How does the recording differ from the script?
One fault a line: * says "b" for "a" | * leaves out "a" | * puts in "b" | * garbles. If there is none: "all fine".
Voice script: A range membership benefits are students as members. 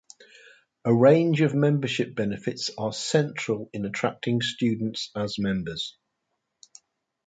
* puts in "of"
* puts in "central in attracting"